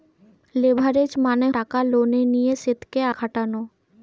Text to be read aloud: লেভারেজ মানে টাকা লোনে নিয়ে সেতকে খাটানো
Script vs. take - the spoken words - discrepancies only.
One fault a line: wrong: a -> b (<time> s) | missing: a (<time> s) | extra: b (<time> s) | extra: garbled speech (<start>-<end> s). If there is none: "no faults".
no faults